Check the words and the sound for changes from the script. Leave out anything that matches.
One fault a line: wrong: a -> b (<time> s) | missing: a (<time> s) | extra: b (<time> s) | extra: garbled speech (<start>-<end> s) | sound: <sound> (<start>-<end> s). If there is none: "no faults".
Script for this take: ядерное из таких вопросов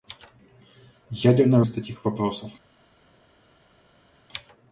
no faults